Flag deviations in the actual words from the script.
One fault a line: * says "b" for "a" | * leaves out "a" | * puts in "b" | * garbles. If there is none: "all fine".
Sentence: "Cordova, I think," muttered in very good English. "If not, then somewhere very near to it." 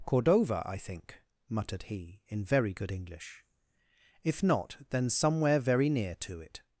* puts in "he"